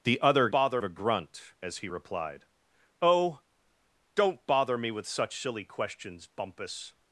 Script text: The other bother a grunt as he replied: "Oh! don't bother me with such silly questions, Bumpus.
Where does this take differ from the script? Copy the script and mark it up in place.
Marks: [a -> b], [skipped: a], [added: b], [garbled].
The other bother a grunt as he replied: "Oh! don't bother me with such silly questions, Bumpus.